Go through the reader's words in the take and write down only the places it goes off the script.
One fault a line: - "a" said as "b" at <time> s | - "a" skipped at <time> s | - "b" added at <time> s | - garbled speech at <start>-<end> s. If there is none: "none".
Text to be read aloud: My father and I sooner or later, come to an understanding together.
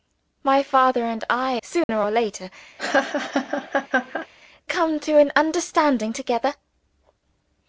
none